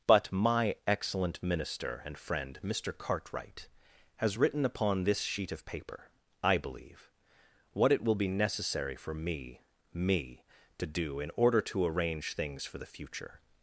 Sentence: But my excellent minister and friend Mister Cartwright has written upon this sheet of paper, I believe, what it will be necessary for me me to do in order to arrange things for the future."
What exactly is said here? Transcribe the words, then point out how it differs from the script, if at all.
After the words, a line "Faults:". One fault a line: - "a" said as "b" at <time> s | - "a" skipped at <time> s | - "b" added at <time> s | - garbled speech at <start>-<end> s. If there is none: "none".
But my excellent minister and friend Mister Cartwright has written upon this sheet of paper, I believe, what it will be necessary for me me to do in order to arrange things for the future."
Faults:
none